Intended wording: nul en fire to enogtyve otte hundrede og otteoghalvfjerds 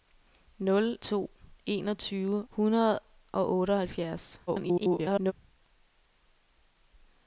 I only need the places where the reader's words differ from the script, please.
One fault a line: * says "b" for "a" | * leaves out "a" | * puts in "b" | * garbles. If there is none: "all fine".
* leaves out "en fire"
* leaves out "otte"
* garbles